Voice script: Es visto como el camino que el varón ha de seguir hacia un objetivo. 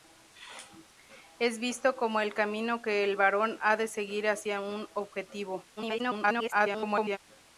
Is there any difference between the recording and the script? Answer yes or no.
yes